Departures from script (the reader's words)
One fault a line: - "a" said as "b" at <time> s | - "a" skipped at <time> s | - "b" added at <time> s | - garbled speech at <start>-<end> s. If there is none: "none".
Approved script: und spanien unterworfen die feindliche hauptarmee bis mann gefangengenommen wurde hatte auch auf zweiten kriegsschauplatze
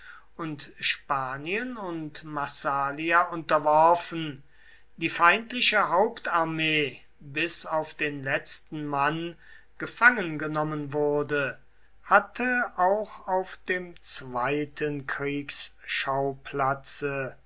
- "und massalia" added at 1.8 s
- "auf den letzten" added at 7.7 s
- "dem" added at 13.7 s